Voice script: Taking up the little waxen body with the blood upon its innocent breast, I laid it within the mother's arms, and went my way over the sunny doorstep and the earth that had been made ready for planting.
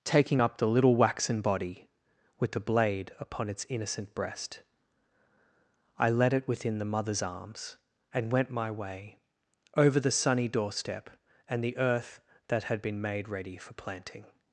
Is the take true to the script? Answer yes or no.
no